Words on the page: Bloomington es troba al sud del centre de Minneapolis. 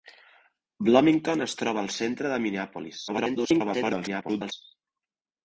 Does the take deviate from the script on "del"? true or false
true